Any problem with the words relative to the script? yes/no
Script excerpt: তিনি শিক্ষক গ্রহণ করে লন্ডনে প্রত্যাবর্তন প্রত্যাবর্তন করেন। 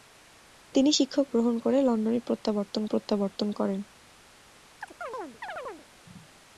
no